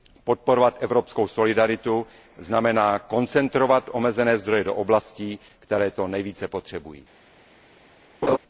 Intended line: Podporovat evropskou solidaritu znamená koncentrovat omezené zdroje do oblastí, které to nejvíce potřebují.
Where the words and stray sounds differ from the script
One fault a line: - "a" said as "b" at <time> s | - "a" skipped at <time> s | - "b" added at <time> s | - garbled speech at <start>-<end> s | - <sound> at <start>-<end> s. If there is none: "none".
- laugh at 8.2-8.4 s